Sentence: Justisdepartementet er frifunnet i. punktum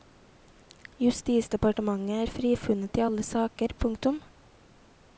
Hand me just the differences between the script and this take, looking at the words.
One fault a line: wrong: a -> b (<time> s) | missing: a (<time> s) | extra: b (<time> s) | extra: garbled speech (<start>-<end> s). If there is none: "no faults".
extra: alle saker (3.0 s)